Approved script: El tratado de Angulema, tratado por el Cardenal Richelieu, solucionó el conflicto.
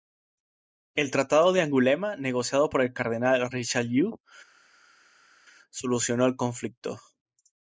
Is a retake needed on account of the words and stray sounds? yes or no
yes